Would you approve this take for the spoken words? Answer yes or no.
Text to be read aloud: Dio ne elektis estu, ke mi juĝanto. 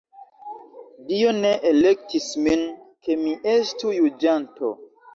no